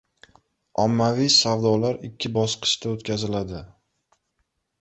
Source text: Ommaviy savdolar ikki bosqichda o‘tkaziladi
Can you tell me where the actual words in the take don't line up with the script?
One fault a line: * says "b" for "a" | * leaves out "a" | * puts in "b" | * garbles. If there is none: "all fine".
all fine